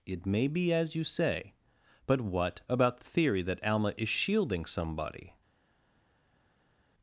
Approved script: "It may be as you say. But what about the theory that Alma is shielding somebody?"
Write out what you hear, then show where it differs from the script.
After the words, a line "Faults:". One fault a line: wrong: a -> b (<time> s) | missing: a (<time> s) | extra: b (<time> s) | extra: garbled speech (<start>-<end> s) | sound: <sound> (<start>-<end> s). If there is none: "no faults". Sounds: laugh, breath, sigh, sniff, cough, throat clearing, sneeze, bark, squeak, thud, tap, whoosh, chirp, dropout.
"It may be as you say. But what about the theory that Alma is shielding somebody?"
Faults:
no faults